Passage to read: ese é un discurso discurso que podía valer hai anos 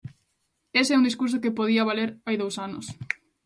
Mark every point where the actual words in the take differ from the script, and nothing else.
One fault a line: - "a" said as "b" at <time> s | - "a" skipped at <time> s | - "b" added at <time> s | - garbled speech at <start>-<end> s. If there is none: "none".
- "discurso" skipped at 1.4 s
- "dous" added at 2.4 s